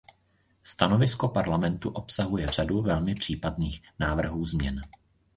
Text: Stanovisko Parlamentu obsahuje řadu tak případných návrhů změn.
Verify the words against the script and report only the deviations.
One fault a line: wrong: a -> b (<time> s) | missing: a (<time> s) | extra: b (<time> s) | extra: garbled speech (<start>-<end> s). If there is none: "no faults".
wrong: tak -> velmi (2.8 s)